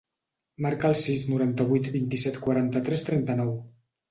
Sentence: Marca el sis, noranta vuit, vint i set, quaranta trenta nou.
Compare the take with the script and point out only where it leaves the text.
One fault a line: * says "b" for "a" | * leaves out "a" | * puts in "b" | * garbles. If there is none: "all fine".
* puts in "tres"